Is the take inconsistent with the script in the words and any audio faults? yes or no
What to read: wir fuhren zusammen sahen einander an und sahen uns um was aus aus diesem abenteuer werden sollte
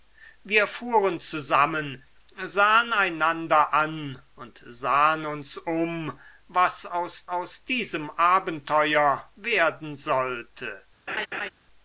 yes